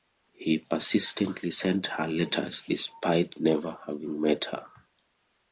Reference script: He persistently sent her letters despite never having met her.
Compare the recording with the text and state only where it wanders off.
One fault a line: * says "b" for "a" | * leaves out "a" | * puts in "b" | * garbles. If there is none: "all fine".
all fine